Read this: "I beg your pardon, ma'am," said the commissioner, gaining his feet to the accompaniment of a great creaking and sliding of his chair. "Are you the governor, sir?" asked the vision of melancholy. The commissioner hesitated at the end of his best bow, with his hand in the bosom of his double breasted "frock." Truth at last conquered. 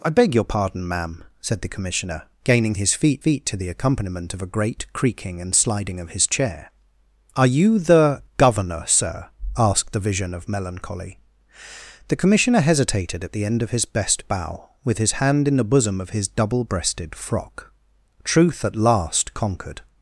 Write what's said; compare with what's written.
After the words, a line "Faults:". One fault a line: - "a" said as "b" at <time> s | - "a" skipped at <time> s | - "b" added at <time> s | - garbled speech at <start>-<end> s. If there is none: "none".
"I beg your pardon, ma'am," said the commissioner, gaining his feet feet to the accompaniment of a great creaking and sliding of his chair. "Are you the governor, sir?" asked the vision of melancholy. The commissioner hesitated at the end of his best bow, with his hand in the bosom of his double breasted "frock." Truth at last conquered.
Faults:
- "feet" added at 3.2 s